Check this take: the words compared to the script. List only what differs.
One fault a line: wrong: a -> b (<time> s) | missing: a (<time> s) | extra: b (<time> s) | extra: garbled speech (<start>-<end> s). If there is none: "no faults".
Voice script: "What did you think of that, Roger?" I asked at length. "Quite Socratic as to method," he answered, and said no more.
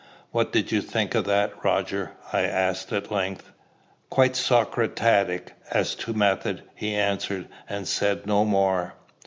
no faults